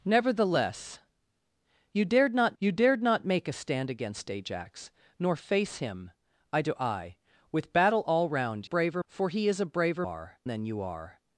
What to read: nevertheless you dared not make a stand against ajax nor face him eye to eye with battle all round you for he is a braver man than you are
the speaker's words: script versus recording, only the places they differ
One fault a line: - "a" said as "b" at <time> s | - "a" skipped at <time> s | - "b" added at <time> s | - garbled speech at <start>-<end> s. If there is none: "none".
- "you dared not" added at 2.6 s
- "you" said as "braver" at 8.6 s
- "man" said as "are" at 10.0 s